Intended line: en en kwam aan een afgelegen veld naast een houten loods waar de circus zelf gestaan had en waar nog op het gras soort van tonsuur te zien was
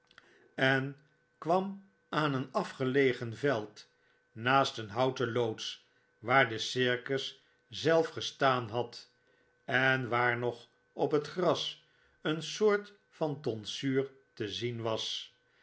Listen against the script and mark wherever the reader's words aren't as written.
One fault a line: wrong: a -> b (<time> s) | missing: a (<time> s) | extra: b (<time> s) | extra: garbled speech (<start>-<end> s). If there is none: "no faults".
missing: en (1.0 s)
extra: een (12.2 s)